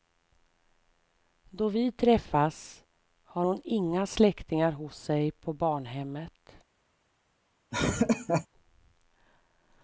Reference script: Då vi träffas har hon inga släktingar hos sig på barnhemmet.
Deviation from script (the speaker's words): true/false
false